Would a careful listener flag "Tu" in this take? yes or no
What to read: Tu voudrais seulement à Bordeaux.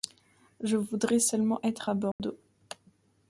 yes